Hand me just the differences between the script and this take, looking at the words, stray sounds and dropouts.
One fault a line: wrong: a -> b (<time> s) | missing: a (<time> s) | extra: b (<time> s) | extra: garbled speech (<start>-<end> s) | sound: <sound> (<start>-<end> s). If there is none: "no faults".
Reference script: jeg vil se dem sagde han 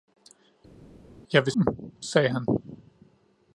missing: se (1.5 s)